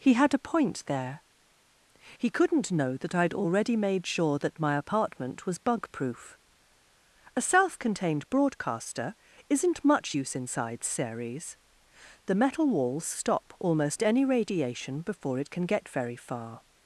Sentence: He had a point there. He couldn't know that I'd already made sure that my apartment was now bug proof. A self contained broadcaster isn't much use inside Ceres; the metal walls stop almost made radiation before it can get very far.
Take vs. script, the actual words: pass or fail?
fail